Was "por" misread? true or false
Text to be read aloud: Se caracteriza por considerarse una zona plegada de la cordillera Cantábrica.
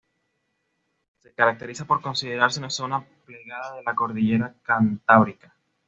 false